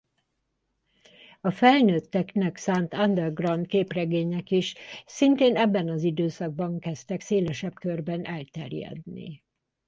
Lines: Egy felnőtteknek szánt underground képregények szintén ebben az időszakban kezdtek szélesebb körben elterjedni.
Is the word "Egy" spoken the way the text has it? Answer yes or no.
no